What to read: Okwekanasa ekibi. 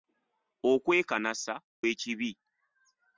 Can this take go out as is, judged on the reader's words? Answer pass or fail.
pass